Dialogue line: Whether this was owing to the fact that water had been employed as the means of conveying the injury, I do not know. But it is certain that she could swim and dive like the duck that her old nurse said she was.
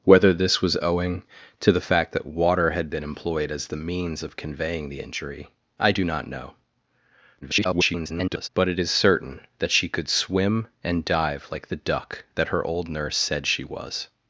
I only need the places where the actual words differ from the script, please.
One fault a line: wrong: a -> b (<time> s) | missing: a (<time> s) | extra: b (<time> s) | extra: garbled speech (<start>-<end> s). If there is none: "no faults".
extra: garbled speech (7.4-8.5 s)